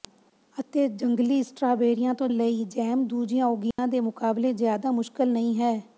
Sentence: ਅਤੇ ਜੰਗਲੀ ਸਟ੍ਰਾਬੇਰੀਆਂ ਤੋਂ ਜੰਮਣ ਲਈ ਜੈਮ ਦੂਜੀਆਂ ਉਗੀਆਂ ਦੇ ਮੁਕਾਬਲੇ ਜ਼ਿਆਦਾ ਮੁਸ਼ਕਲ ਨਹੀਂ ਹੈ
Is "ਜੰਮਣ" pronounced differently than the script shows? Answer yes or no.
yes